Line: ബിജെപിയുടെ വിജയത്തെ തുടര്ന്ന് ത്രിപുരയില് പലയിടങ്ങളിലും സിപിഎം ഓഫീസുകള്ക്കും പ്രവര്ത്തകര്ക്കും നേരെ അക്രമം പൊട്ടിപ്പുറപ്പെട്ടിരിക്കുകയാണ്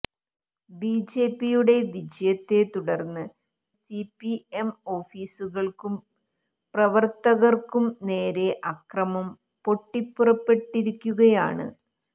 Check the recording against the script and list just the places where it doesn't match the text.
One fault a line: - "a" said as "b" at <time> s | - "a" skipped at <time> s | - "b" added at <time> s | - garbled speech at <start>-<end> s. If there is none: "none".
- "ത്രിപുരയില് പലയിടങ്ങളിലും" skipped at 3.2 s